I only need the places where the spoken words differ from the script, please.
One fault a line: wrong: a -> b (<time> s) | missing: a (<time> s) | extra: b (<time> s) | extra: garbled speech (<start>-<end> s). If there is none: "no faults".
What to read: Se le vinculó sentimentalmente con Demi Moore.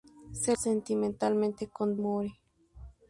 missing: le vinculó (0.6 s)
missing: Demi (2.0 s)